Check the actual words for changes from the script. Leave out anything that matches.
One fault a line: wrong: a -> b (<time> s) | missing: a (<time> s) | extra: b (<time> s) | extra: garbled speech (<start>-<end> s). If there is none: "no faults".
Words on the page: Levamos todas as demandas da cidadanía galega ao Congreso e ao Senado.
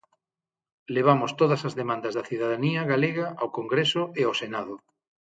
no faults